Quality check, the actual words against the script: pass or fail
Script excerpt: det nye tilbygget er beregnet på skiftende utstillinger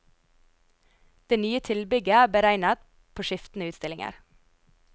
pass